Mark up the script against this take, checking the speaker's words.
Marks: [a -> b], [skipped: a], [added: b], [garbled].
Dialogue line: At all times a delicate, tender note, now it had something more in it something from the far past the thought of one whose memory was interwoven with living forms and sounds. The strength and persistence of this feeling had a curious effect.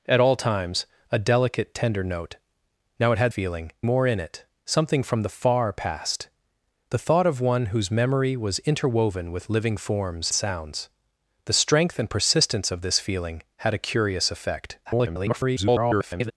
At all times a delicate, tender note, now it had [something -> feeling] more in it something from the far past the thought of one whose memory was interwoven with living forms [skipped: and] sounds. The strength and persistence of this feeling had a curious effect. [garbled]